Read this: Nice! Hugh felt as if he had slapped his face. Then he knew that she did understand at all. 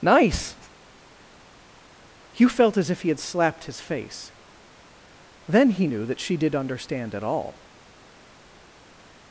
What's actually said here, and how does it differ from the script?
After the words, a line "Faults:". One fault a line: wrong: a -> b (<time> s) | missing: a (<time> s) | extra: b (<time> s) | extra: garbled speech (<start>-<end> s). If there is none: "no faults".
Nice! Hugh felt as if he had slapped his face. Then he knew that she did understand at all.
Faults:
no faults